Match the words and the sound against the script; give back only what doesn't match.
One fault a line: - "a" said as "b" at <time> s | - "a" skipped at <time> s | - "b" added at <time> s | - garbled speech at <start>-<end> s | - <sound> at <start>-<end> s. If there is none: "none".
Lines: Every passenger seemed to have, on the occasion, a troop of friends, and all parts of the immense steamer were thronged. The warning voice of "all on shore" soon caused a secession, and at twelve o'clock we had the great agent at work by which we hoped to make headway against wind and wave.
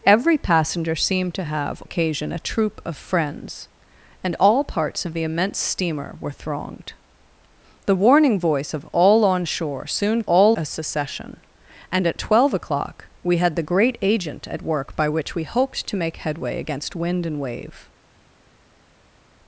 - "on the" skipped at 1.8 s
- "caused" said as "all" at 10.2 s